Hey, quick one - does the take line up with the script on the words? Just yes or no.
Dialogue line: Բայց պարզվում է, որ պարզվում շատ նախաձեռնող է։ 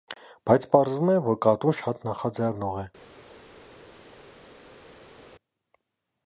no